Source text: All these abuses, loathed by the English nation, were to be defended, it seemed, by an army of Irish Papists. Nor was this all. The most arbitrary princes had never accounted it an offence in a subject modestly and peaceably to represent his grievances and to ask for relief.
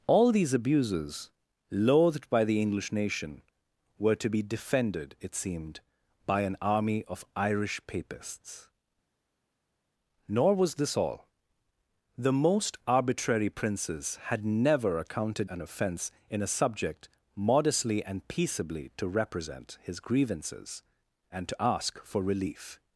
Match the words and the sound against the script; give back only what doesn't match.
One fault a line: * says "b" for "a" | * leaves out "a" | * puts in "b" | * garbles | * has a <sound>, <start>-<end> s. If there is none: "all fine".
* leaves out "it"